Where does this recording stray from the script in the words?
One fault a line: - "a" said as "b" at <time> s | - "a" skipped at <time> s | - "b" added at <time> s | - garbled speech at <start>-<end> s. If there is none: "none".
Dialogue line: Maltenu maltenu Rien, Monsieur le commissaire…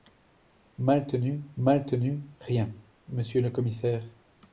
none